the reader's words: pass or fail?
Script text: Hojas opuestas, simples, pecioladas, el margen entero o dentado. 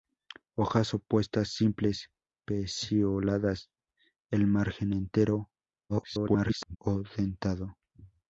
fail